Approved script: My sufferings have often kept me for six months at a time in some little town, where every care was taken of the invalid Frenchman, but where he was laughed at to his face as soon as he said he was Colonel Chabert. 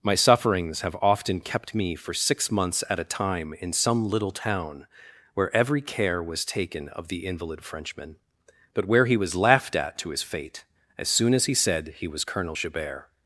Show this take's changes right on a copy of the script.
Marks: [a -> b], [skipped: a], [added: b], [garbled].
My sufferings have often kept me for six months at a time in some little town, where every care was taken of the invalid Frenchman, but where he was laughed at to his [face -> fate] as soon as he said he was Colonel Chabert.